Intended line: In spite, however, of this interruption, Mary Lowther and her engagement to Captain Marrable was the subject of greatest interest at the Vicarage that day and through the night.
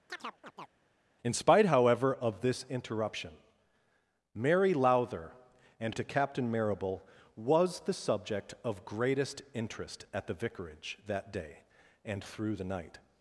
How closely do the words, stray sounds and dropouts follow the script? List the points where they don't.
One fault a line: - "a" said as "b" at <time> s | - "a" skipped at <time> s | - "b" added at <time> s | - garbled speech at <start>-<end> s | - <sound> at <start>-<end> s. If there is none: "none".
- chirp at 0.1-0.7 s
- "her engagement" skipped at 6.0 s